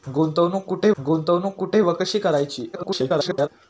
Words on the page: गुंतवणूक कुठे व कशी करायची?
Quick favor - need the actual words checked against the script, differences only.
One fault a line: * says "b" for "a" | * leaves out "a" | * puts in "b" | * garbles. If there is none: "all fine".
* puts in "गुंतवणूक कुठे"
* garbles